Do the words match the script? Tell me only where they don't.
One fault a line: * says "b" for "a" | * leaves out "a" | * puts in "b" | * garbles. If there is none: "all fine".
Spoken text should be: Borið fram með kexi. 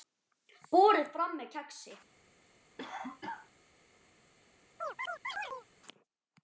all fine